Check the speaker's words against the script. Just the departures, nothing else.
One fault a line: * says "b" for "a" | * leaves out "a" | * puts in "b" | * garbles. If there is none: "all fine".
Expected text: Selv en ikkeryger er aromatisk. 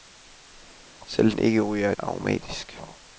all fine